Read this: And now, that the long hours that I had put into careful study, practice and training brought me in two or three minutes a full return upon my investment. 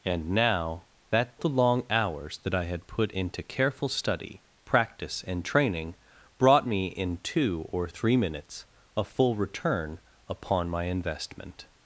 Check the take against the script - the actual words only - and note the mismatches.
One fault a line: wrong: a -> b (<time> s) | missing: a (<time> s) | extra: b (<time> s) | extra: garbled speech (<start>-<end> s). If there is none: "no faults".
no faults